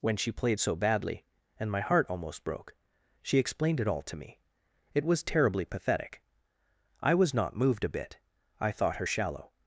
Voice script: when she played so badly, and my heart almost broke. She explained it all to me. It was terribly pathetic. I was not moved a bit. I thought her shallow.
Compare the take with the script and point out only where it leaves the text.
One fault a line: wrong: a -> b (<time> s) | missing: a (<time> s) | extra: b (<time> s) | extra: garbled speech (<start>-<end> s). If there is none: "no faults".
no faults